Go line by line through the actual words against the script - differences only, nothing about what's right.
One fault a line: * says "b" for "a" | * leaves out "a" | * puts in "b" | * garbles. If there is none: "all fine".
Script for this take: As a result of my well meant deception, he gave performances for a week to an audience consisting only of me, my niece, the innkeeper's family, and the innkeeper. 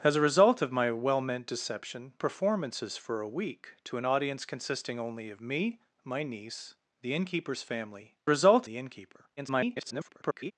* leaves out "he gave"
* says "result" for "and"
* garbles